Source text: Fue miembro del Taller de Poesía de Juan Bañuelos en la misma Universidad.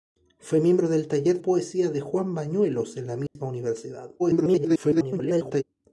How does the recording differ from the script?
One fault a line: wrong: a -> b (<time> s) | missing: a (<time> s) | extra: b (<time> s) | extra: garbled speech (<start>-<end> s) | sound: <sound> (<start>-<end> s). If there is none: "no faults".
missing: de (1.4 s)
sound: dropout (3.3-3.4 s)
extra: garbled speech (4.2-5.6 s)